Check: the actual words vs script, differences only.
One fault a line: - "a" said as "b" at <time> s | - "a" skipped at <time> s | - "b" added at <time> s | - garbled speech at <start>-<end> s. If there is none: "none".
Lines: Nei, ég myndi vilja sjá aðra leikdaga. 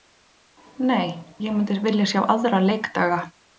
none